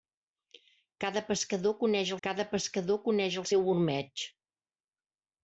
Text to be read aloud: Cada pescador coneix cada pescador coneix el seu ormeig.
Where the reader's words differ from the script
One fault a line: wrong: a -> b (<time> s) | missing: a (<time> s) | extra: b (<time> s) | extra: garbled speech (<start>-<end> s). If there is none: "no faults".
no faults